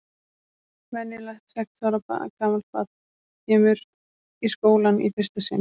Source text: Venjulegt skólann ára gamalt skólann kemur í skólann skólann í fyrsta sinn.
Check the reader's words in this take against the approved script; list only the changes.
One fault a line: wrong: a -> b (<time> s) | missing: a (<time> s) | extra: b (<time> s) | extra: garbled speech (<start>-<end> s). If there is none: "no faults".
wrong: skólann -> sex (1.5 s)
wrong: skólann -> barn (2.8 s)
missing: skólann (5.0 s)